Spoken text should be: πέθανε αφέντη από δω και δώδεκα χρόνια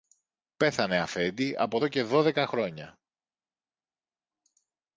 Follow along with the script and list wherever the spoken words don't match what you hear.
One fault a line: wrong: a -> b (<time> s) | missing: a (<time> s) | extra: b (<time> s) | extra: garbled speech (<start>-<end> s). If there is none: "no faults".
no faults